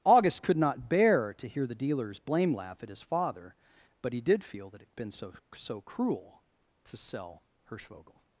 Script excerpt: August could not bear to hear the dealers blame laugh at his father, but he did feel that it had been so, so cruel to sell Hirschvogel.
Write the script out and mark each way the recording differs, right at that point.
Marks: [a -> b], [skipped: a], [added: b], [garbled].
August could not bear to hear the dealers blame laugh at his father, but he did feel that it had been so, so cruel to sell Hirschvogel.